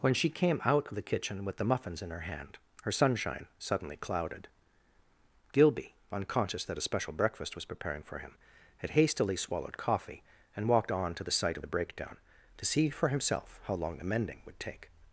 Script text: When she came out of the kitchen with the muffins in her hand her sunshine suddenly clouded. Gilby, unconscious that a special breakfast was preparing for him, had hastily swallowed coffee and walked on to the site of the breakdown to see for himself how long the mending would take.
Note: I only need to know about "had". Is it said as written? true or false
true